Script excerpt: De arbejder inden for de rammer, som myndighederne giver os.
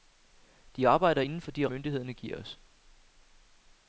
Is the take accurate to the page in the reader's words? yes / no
no